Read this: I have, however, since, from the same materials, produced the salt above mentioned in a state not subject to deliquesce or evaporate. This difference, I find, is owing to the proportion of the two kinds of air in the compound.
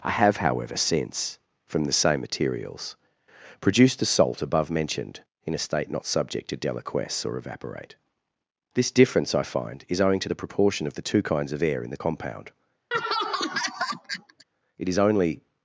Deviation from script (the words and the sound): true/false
true